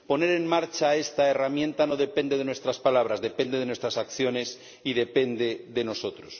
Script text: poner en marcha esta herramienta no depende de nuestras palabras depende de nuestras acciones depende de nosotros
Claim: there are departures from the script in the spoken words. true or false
true